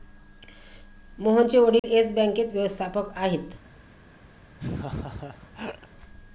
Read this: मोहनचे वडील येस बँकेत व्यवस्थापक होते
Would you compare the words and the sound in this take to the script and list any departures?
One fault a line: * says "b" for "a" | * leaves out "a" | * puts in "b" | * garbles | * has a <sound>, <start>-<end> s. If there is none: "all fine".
* has a dropout, 1.8-1.8 s
* says "आहेत" for "होते"
* has a laugh, 4.6-5.9 s